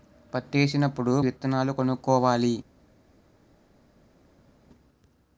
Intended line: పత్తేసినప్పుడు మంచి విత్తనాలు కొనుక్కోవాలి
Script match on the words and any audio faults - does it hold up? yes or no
no